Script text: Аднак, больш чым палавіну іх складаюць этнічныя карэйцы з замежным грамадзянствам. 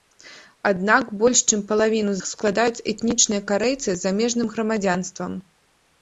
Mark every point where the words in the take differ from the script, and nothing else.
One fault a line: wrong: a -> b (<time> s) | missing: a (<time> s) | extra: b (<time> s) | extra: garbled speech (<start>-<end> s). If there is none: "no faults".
no faults